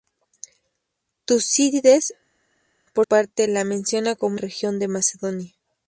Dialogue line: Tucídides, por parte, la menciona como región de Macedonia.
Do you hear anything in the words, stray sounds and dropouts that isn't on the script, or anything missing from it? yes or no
no